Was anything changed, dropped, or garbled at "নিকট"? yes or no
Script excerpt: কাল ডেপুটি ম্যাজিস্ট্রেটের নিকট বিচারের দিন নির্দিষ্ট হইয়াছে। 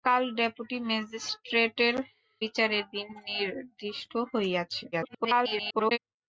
yes